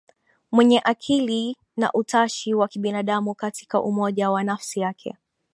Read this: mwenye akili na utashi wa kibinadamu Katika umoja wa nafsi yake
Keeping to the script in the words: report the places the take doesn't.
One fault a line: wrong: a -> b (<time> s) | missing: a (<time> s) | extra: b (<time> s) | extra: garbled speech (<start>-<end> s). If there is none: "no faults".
no faults